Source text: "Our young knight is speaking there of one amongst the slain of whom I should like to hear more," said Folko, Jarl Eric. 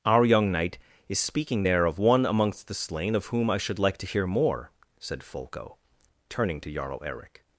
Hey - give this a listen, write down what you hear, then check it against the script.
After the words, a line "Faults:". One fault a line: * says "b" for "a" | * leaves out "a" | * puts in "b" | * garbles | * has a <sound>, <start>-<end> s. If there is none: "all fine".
"Our young knight is speaking there of one amongst the slain of whom I should like to hear more," said Folko, turning to Jarl Eric.
Faults:
* puts in "turning to"